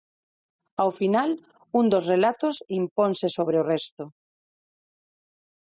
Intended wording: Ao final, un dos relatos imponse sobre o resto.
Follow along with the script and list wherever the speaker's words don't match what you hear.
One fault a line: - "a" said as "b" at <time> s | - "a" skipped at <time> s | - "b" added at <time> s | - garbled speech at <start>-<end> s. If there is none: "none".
none